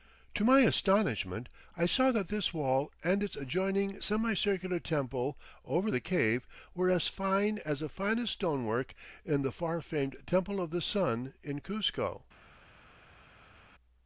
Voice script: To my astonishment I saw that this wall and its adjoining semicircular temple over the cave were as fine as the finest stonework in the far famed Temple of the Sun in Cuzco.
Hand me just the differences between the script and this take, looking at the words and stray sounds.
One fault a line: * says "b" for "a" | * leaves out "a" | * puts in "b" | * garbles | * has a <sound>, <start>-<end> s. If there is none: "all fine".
all fine